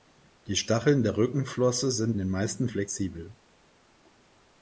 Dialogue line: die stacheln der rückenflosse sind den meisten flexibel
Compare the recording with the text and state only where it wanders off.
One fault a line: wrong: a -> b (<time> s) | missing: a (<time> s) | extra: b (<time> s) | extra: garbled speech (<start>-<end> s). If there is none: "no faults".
no faults